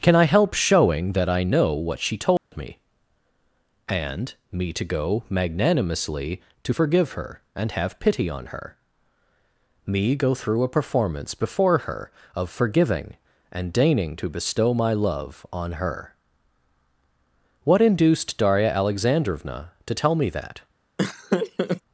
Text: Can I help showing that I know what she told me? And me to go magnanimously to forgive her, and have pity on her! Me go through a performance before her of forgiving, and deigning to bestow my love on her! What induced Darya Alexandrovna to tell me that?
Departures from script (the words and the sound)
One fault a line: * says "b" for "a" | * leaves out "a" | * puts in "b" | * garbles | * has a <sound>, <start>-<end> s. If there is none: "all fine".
* has a dropout, 2.4-2.5 s
* has a laugh, 21.0-21.8 s